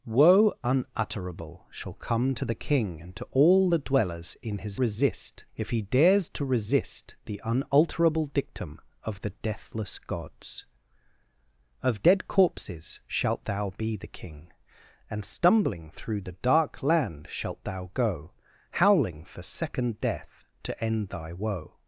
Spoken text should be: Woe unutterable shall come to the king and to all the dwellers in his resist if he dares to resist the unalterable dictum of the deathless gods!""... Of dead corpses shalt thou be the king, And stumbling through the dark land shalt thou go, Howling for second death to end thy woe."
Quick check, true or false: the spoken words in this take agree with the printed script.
true